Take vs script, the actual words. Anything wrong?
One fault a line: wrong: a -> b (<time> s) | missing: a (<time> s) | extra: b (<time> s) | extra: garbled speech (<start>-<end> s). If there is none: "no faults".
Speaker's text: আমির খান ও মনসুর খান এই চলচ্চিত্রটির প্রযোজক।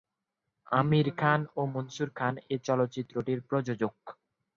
no faults